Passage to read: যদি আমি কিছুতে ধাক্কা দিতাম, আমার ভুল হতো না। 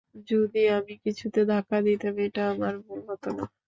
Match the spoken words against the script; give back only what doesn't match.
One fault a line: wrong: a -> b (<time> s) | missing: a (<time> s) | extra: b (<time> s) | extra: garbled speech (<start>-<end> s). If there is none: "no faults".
extra: এটা (2.2 s)